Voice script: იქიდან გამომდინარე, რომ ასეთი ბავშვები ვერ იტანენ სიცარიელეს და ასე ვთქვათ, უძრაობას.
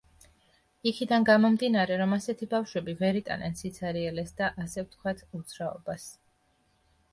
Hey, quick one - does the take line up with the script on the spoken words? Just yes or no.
yes